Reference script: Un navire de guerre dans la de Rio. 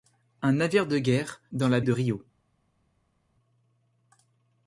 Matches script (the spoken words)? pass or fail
pass